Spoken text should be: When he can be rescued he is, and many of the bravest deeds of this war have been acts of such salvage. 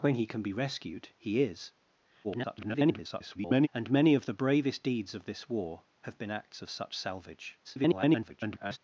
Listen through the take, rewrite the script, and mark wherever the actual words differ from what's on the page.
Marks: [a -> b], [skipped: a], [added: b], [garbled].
When he can be rescued he is, [garbled] and many of the bravest deeds of this war have been acts of such salvage. [garbled]